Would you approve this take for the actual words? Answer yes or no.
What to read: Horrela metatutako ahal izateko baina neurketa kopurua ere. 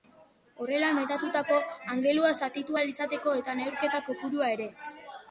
no